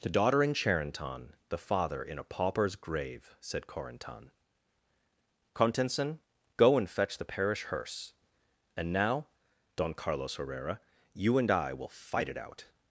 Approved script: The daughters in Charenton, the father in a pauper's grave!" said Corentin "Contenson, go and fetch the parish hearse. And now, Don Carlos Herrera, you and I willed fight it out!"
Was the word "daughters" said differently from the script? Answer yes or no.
yes